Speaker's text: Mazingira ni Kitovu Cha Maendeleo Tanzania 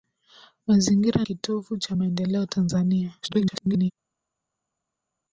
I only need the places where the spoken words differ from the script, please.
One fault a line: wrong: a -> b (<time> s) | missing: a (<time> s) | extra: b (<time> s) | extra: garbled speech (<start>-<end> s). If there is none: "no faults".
missing: ni (1.2 s)
extra: garbled speech (3.2-3.9 s)